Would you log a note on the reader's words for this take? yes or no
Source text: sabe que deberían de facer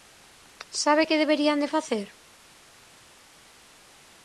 no